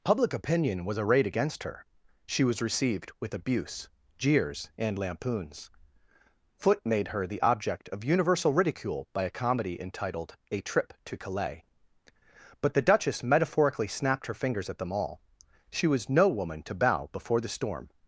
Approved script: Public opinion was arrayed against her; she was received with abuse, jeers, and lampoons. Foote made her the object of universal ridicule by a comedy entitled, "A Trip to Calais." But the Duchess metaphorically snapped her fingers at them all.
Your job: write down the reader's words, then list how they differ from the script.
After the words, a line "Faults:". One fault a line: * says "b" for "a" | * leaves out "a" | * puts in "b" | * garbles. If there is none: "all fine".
Public opinion was arrayed against her; she was received with abuse, jeers, and lampoons. Foote made her the object of universal ridicule by a comedy entitled, "A Trip to Calais." But the Duchess metaphorically snapped her fingers at them all. She was no woman to bow before the storm
Faults:
* puts in "She was no woman to bow before the storm"